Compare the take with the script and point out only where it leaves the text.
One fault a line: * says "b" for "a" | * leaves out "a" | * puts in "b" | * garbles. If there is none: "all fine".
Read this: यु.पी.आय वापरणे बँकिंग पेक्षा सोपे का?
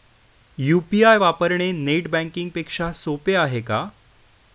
* puts in "नेट"
* puts in "आहे"